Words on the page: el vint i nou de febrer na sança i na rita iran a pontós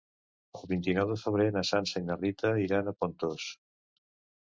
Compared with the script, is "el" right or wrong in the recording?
right